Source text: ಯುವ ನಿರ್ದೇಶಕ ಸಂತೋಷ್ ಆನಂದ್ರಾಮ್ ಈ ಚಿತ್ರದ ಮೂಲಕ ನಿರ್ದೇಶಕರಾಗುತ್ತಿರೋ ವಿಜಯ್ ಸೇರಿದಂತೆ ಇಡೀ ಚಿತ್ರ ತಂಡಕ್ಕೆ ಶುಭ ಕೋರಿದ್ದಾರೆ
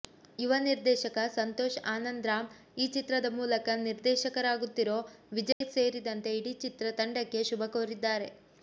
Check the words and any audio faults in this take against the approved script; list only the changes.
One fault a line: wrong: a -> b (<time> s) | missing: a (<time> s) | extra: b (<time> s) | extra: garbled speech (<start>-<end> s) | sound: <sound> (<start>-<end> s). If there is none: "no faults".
sound: dropout (5.5-5.6 s)